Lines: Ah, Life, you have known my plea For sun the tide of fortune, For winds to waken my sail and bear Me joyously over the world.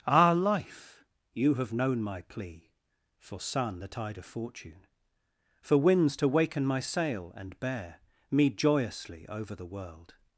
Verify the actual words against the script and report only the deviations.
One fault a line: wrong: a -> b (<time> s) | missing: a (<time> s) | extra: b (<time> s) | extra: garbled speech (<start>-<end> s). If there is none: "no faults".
no faults